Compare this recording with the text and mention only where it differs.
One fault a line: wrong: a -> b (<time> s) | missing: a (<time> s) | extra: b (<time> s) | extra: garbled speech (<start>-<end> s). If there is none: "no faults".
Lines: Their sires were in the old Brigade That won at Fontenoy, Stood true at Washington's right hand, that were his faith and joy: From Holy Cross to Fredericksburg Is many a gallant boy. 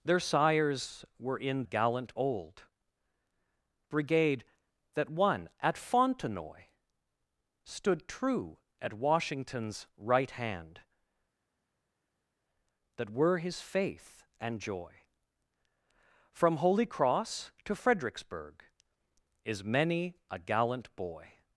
wrong: the -> gallant (1.6 s)